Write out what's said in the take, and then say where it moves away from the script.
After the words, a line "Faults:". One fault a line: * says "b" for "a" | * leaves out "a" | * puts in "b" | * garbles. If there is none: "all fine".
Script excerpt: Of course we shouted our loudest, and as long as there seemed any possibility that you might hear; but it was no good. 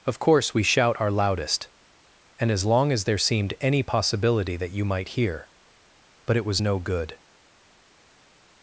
Of course we shout our loudest, and as long as there seemed any possibility that you might hear; but it was no good.
Faults:
* says "shout" for "shouted"